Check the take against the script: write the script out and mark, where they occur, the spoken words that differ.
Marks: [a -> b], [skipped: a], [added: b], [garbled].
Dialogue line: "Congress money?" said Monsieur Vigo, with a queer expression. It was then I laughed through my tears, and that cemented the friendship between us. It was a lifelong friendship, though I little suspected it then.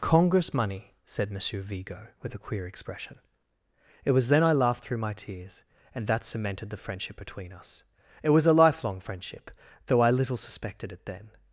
"Congress money?" said Monsieur Vigo, with a queer expression. It was then I laughed through my tears, and that cemented the friendship between us. It was a lifelong friendship, though I little suspected it then.